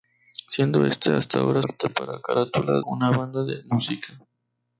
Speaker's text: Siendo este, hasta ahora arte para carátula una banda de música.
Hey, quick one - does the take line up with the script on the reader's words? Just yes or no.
yes